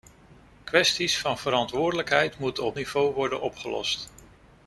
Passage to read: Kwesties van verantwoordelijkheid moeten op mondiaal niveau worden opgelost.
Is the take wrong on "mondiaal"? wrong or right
wrong